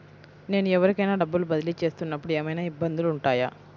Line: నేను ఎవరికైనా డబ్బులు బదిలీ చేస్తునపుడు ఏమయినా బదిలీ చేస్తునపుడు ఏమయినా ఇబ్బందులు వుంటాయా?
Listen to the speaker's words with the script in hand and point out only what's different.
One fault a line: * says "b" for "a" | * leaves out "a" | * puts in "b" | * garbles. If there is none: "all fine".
* leaves out "బదిలీ చేస్తునపుడు ఏమయినా"